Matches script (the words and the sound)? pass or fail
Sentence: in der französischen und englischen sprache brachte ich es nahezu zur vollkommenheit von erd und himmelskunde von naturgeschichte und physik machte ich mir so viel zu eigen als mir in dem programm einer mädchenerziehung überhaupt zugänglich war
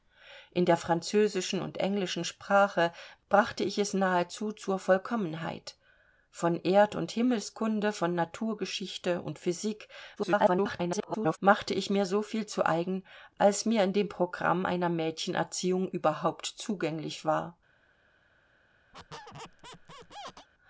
fail